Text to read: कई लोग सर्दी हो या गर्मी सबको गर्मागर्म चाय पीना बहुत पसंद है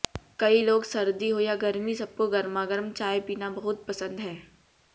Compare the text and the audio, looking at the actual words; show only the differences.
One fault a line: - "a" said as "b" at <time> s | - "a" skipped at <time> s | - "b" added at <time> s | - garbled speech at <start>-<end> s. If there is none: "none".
none